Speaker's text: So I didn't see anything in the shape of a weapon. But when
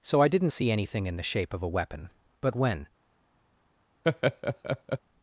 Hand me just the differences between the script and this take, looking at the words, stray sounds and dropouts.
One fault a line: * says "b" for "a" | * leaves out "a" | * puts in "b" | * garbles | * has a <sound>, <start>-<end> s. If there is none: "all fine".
* has a laugh, 4.0-5.0 s